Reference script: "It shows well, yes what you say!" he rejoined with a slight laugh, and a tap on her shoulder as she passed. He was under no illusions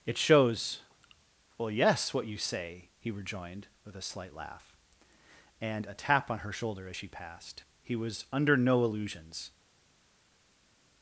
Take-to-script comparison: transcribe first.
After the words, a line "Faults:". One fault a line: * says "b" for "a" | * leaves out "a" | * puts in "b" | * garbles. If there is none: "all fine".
"It shows well, yes what you say!" he rejoined with a slight laugh, and a tap on her shoulder as she passed. He was under no illusions
Faults:
all fine